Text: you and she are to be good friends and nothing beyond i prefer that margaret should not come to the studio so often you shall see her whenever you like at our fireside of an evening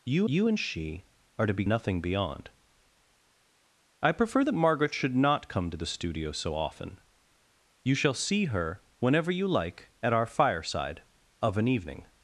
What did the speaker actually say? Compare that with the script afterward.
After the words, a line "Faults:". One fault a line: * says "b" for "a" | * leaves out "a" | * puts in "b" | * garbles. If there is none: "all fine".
you you and she are to be nothing beyond i prefer that margaret should not come to the studio so often you shall see her whenever you like at our fireside of an evening
Faults:
* puts in "you"
* leaves out "good friends and"